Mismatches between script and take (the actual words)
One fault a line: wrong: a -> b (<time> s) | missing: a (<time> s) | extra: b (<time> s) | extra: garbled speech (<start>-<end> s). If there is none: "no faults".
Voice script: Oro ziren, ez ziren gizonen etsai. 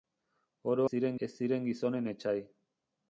no faults